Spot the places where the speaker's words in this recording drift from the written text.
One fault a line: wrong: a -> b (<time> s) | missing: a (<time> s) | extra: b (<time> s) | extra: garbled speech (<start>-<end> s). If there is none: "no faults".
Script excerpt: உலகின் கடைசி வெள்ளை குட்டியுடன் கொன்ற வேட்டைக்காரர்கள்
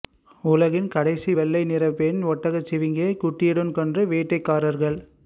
extra: நிற பெண் ஒட்டகச்சிவிங்கியை (1.6 s)